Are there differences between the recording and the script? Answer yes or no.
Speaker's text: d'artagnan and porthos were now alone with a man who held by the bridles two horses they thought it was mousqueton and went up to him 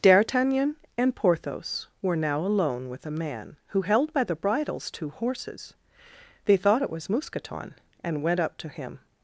no